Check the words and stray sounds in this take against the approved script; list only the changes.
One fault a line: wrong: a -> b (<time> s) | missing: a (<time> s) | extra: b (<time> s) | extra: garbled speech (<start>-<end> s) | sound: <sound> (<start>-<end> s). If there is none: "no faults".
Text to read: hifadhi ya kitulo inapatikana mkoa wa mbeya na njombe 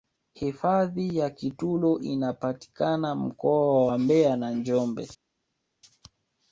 no faults